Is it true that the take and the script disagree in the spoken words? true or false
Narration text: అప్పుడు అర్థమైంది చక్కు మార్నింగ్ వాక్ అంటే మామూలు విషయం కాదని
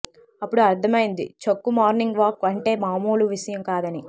false